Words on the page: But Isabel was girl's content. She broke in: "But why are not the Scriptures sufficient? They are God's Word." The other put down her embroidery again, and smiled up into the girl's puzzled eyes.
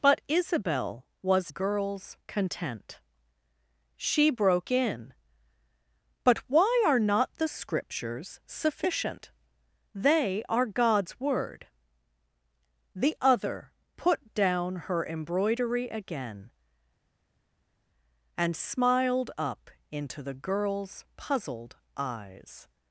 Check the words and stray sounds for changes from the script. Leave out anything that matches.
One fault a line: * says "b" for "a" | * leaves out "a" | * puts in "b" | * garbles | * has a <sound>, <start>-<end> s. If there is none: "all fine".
all fine